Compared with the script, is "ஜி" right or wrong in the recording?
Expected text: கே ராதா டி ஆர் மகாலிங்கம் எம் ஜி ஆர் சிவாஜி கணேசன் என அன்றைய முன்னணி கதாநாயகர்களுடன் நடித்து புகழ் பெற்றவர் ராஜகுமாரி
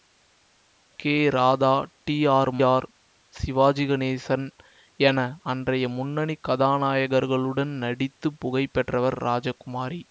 wrong